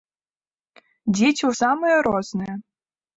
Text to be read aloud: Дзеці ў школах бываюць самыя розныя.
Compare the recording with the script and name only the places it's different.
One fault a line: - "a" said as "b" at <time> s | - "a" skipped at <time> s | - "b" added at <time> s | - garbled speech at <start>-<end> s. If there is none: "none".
- "школах бываюць" skipped at 1.5 s